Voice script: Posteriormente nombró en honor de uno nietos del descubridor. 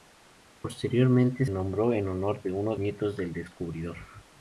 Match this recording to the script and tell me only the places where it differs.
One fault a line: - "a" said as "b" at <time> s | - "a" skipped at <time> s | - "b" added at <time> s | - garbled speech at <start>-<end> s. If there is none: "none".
none